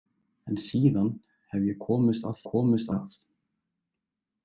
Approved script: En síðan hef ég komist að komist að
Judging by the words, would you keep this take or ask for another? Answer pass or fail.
pass